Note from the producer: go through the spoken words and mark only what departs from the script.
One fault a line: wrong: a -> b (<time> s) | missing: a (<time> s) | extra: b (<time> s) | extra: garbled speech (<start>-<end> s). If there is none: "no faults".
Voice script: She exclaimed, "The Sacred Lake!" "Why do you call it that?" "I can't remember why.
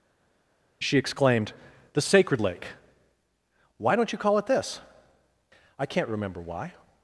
wrong: do -> don't (4.0 s)
wrong: that -> this (4.5 s)